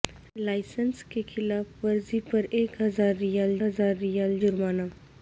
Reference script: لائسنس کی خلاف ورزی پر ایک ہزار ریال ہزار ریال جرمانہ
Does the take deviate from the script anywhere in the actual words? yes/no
no